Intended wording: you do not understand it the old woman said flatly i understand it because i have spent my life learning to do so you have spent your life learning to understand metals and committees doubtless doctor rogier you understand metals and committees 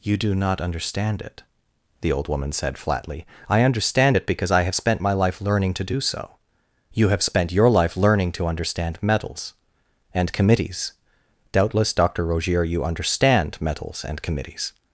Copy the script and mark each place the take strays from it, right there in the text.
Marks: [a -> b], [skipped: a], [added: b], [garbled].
you do not understand it the old woman said flatly i understand it because i have spent my life learning to do so you have spent your life learning to understand metals and committees doubtless doctor rogier you understand metals and committees